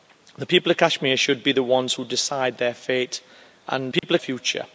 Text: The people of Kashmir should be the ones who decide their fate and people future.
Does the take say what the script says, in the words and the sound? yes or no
no